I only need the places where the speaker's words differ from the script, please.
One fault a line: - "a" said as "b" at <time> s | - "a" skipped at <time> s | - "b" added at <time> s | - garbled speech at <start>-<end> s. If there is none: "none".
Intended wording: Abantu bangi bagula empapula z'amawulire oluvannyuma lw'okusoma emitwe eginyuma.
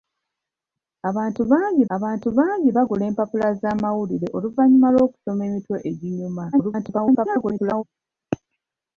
- "abantu bangi" added at 2.0 s
- garbled speech at 6.5-7.8 s